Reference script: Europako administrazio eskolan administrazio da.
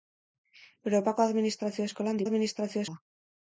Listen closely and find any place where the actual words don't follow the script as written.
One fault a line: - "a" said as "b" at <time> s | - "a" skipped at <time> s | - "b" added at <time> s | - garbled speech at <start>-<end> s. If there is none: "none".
none